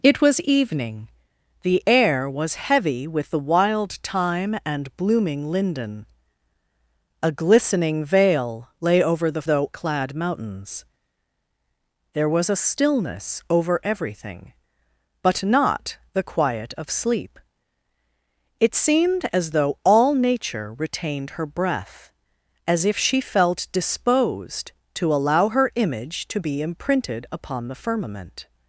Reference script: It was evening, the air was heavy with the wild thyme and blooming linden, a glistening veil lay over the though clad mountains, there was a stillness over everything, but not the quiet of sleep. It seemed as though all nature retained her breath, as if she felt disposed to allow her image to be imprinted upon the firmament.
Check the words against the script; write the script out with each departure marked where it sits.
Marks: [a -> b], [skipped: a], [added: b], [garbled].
It was evening, the air was heavy with the wild thyme and blooming linden, a glistening veil lay over the though clad mountains, there was a stillness over everything, but not the quiet of sleep. It seemed as though all nature retained her breath, as if she felt disposed to allow her image to be imprinted upon the firmament.